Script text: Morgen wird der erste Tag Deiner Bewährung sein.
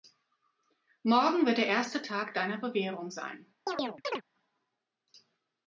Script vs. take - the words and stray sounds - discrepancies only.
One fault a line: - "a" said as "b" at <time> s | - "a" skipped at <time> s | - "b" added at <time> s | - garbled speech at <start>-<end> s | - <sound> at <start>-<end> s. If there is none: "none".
- chirp at 3.7-4.2 s